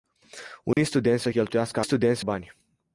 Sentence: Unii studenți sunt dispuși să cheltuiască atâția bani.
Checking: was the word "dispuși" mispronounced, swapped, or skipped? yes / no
yes